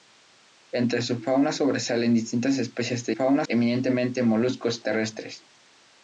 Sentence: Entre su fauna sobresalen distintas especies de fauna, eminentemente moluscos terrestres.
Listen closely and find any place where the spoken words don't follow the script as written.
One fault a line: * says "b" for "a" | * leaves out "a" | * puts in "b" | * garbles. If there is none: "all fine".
all fine